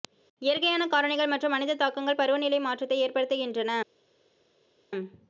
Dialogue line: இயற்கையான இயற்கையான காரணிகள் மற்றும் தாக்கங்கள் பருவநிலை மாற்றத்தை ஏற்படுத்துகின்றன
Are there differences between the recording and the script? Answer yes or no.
yes